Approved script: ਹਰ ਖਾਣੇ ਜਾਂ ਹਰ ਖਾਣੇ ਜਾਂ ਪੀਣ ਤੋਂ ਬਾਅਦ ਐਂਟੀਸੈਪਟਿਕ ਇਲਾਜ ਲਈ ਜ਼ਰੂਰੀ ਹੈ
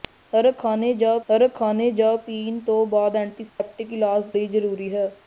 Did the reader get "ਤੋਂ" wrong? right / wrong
right